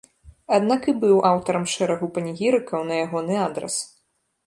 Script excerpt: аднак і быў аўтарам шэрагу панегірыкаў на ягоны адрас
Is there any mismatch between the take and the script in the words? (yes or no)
no